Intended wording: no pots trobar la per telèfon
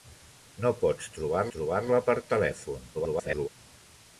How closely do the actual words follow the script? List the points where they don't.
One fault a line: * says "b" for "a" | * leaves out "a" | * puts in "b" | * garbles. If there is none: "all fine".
* puts in "trobar"
* garbles